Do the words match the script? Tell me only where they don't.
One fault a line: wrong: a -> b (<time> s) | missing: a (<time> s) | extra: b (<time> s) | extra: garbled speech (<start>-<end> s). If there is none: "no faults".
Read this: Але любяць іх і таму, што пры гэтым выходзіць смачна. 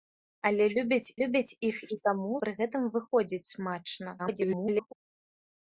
extra: любяць (1.2 s)
missing: што (2.4 s)
extra: garbled speech (4.2-4.9 s)